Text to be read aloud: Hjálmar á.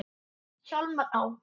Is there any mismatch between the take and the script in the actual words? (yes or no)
no